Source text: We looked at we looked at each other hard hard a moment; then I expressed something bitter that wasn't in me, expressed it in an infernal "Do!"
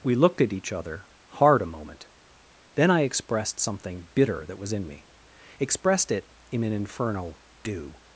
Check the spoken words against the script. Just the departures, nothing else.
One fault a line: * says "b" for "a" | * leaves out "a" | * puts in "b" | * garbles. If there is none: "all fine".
* leaves out "we looked at"
* leaves out "hard"
* says "was" for "wasn't"